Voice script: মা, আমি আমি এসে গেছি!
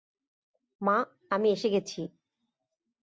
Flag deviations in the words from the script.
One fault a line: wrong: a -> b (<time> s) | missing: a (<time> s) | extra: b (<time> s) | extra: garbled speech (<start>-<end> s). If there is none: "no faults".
missing: আমি (1.5 s)